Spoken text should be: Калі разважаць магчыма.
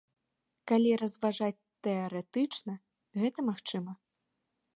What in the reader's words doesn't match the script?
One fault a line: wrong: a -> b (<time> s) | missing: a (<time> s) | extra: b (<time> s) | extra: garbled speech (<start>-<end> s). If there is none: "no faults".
extra: тэарэтычна гэта (1.9 s)